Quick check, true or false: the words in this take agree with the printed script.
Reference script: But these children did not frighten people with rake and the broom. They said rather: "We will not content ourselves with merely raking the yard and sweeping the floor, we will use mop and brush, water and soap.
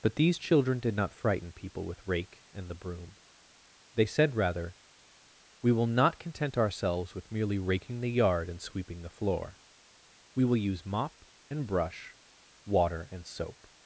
true